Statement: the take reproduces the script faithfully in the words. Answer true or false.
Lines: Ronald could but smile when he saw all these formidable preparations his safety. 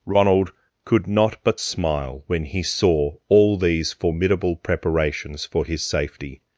false